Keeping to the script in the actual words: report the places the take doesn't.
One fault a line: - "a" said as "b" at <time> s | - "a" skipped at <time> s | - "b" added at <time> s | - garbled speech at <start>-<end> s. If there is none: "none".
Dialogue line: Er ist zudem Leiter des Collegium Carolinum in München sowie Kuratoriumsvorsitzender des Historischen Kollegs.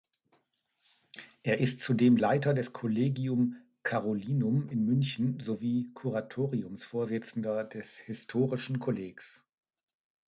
none